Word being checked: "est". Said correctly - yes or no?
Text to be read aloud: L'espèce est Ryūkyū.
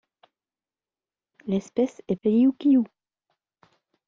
yes